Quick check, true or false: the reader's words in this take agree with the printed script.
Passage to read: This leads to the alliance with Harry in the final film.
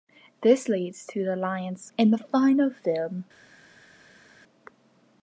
false